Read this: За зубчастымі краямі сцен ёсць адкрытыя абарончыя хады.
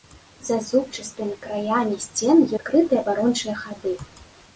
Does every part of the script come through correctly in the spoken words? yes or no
no